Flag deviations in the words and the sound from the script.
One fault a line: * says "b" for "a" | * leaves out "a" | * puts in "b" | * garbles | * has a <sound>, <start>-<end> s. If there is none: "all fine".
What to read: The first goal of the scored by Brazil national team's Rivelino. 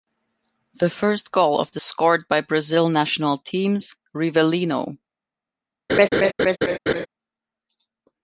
* has a laugh, 5.9-7.1 s